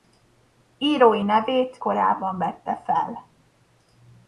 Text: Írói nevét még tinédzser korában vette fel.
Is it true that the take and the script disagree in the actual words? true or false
true